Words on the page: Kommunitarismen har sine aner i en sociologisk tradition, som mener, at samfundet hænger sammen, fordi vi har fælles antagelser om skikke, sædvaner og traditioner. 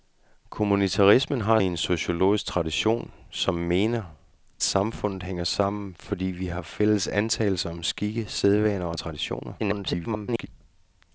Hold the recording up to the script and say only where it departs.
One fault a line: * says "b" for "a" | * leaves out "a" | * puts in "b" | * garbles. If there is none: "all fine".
* leaves out "sine aner"
* leaves out "at"
* garbles